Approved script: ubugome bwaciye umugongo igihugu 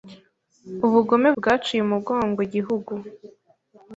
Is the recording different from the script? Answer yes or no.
no